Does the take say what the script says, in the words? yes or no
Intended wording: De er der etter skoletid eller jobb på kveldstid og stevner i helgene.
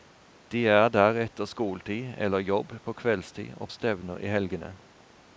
yes